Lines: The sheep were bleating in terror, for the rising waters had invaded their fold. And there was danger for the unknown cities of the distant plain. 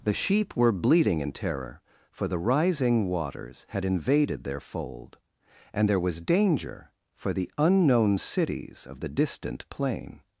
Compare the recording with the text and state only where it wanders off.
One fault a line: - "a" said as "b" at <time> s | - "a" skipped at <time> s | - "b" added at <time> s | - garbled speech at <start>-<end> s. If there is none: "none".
none